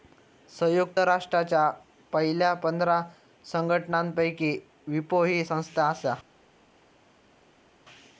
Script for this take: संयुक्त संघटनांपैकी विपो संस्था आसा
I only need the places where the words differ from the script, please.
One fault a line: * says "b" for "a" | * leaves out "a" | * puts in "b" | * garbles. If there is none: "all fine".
* puts in "राष्ट्रांच्या पयल्या पंधरा"
* puts in "ही"